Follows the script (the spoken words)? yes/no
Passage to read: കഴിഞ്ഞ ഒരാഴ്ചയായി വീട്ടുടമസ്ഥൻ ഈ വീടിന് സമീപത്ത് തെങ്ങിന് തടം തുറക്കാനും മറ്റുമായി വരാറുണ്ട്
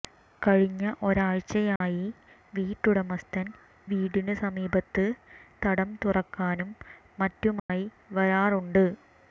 no